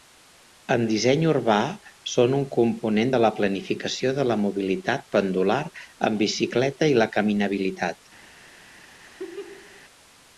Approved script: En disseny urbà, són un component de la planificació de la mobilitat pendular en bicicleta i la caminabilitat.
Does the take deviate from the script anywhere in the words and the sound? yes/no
yes